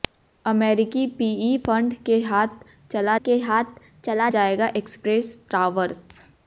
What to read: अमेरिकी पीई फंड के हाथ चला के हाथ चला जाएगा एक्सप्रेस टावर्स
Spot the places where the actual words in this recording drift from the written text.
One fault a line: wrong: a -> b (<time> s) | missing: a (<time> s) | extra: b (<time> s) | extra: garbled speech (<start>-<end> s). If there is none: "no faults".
no faults